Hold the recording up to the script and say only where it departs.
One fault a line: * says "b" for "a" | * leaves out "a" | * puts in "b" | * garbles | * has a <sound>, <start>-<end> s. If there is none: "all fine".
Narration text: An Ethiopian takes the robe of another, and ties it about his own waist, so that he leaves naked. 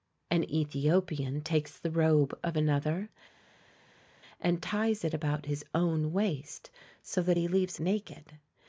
all fine